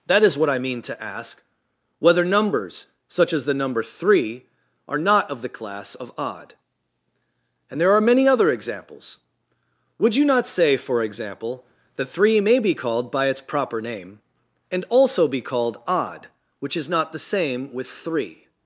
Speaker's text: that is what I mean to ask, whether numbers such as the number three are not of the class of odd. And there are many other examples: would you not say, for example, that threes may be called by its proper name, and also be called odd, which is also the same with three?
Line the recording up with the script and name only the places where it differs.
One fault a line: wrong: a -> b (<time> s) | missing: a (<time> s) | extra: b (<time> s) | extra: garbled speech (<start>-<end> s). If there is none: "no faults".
wrong: threes -> three (12.1 s)
wrong: also -> not (16.9 s)